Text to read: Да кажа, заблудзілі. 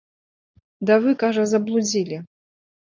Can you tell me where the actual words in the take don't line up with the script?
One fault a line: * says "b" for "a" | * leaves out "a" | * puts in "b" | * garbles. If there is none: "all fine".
* puts in "вы"